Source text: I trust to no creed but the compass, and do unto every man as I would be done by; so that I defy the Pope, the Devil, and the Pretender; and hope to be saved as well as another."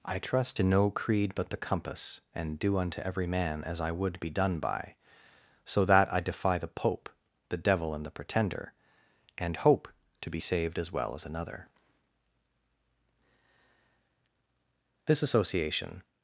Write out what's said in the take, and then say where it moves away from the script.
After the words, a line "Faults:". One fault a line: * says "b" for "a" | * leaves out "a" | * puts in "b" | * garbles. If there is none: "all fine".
I trust to no creed but the compass, and do unto every man as I would be done by; so that I defy the Pope, the Devil, and the Pretender; and hope to be saved as well as another." This association
Faults:
* puts in "This association"